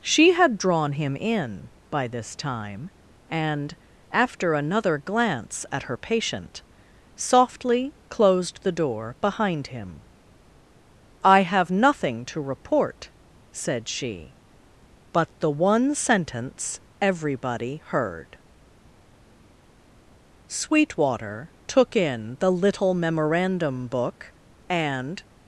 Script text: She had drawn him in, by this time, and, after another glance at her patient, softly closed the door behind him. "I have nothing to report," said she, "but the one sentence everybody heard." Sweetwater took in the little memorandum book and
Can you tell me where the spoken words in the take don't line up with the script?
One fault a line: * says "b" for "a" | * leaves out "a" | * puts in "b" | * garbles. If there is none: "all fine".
all fine